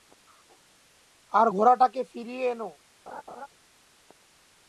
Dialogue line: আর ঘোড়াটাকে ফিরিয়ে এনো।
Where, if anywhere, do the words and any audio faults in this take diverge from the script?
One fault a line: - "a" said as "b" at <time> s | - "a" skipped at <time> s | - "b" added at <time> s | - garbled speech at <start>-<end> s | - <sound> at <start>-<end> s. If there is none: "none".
- laugh at 3.1-3.5 s